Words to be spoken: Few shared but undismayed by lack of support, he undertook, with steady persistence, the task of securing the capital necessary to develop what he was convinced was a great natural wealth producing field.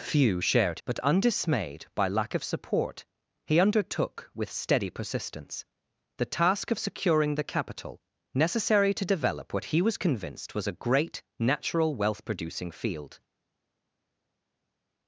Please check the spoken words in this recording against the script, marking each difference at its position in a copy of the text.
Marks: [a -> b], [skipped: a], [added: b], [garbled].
Few shared but undismayed by lack of support, he undertook, with steady persistence, the task of securing the capital necessary to develop what he was convinced was a great natural wealth producing field.